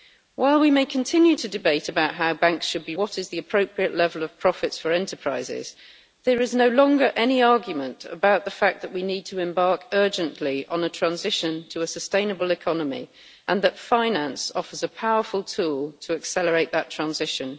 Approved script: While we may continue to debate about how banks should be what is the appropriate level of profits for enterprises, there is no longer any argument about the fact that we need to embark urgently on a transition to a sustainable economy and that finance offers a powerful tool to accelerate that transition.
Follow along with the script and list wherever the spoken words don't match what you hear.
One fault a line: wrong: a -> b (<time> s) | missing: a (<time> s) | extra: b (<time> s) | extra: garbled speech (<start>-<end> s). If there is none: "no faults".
no faults